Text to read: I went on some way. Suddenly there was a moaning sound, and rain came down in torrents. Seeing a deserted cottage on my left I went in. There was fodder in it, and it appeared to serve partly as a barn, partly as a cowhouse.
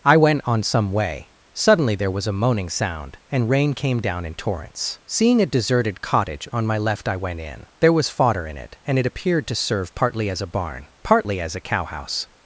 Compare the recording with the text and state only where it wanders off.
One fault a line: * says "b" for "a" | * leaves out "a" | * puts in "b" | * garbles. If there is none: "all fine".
all fine